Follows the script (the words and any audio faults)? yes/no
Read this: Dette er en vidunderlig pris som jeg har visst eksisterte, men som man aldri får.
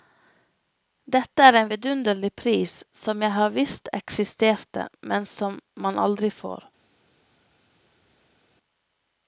yes